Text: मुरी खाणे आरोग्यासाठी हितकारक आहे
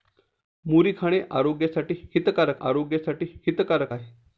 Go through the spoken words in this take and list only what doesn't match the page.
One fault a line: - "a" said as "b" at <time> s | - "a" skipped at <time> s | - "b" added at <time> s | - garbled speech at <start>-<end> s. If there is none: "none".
- "आरोग्यासाठी हितकारक" added at 2.6 s